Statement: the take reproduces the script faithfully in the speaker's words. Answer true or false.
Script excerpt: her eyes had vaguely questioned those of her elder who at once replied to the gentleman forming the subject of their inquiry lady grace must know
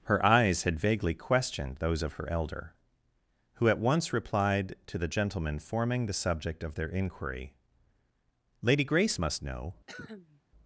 true